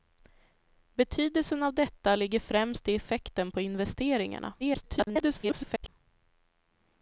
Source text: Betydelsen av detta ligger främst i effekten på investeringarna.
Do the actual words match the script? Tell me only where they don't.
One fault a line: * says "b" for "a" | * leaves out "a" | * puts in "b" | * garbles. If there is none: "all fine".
* garbles